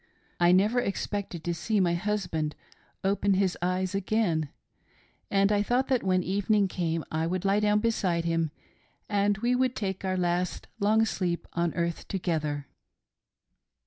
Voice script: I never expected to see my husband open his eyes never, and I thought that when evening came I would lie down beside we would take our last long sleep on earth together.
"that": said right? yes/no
yes